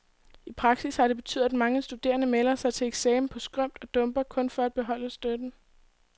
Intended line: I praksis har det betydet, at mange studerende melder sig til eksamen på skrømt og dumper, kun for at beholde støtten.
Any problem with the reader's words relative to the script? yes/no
no